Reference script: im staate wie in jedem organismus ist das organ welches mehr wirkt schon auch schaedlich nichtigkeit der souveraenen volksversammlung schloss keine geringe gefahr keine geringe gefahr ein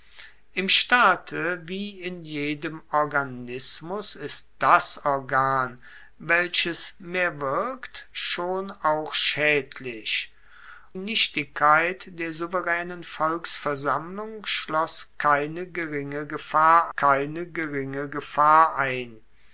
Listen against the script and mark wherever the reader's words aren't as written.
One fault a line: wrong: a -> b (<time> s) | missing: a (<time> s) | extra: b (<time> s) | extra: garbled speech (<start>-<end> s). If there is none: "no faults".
no faults